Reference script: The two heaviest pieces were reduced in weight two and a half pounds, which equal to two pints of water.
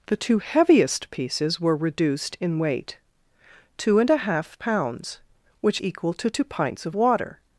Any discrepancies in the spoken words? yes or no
no